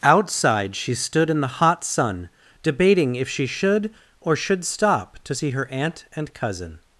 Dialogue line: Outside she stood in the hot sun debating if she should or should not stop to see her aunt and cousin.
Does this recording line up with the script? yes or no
no